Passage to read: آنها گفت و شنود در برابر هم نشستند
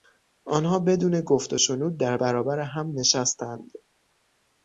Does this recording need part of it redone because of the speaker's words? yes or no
yes